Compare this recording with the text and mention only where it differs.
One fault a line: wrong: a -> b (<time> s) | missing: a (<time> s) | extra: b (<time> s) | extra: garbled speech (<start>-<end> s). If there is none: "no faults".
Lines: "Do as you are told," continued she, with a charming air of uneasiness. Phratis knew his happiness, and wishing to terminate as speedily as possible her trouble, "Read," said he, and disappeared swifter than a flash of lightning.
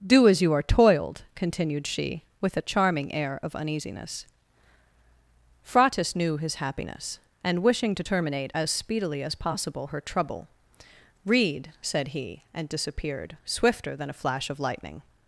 wrong: told -> toiled (0.6 s)